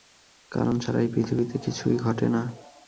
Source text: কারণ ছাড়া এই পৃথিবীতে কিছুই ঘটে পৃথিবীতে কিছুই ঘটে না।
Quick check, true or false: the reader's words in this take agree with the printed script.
false